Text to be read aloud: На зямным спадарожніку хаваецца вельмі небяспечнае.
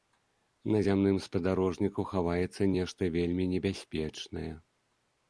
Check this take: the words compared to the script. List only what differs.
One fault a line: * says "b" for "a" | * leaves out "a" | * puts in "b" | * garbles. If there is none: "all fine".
* puts in "нешта"